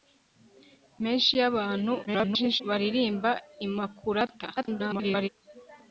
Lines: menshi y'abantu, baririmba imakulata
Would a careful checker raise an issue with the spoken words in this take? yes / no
yes